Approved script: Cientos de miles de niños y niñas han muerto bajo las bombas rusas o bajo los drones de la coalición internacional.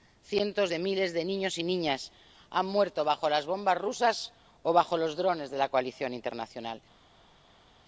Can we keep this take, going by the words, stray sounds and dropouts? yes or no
yes